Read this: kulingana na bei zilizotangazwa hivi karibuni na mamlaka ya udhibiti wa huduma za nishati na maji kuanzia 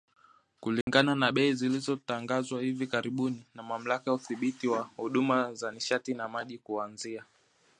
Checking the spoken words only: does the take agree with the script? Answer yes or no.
yes